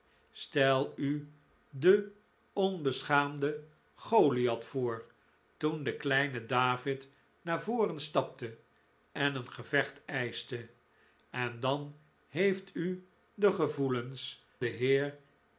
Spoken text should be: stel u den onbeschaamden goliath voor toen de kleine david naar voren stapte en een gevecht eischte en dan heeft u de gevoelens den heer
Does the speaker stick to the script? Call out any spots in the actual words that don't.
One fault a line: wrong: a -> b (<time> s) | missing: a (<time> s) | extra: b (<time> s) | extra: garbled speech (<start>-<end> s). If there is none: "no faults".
no faults